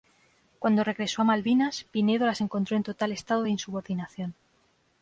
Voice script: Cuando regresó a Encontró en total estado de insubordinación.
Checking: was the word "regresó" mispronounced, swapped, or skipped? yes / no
no